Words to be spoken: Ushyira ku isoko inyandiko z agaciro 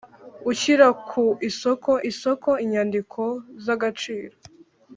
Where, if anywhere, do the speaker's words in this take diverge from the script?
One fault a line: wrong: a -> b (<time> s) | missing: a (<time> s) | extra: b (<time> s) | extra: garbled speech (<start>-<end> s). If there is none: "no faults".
extra: isoko (2.1 s)